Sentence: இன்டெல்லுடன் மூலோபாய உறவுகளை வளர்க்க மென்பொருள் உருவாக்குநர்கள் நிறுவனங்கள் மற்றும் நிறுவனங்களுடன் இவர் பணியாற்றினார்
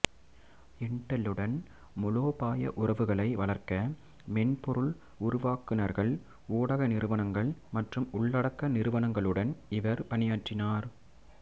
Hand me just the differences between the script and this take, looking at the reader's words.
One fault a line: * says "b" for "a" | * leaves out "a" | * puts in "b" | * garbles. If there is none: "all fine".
* puts in "ஊடக"
* puts in "உள்ளடக்க"